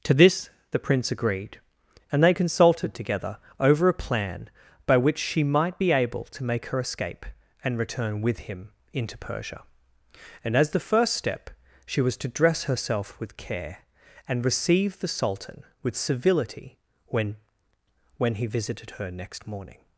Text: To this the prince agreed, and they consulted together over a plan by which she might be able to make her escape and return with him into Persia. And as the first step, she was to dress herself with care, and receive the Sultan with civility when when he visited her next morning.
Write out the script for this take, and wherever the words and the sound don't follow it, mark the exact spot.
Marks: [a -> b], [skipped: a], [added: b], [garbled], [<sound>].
To this the prince agreed, and they consulted together over a plan by which she might be able to make her escape and return with him into Persia. And as the first step, she was to dress herself with care, and receive the Sultan with civility when when he visited her next morning.